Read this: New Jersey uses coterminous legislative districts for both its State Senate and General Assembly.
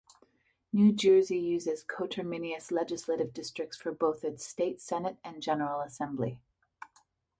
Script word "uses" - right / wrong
right